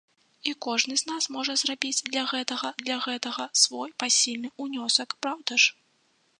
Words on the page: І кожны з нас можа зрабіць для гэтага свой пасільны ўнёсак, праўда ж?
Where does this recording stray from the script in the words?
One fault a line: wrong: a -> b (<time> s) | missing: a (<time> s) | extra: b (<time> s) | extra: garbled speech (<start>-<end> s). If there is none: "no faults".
extra: для гэтага (2.8 s)